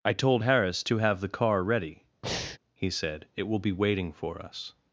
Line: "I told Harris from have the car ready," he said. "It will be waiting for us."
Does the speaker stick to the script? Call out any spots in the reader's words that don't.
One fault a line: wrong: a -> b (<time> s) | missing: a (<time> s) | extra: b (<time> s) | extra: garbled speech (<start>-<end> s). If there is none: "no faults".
wrong: from -> to (0.8 s)